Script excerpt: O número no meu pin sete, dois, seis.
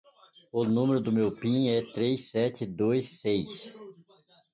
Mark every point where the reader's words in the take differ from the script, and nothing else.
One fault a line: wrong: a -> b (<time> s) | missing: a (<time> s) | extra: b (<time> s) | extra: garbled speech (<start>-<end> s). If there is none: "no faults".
wrong: no -> do (1.0 s)
extra: é três (1.7 s)